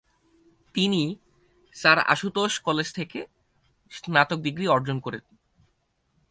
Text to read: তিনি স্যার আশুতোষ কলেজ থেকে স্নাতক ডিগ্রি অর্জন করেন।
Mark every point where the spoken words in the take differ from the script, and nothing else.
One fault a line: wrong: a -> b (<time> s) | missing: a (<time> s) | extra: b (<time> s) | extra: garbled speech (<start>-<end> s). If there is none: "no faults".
no faults